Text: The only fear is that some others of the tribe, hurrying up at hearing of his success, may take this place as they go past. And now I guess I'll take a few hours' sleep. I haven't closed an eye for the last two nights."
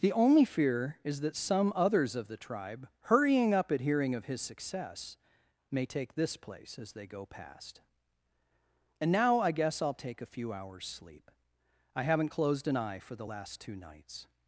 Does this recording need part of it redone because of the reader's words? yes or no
no